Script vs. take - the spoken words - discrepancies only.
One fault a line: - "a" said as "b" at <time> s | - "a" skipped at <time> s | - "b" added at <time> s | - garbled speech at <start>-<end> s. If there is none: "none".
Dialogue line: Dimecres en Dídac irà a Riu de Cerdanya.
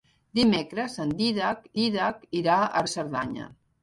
- "Dídac" added at 1.8 s
- "Riu" skipped at 2.8 s